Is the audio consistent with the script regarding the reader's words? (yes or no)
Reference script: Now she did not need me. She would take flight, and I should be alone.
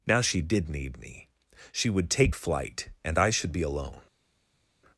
no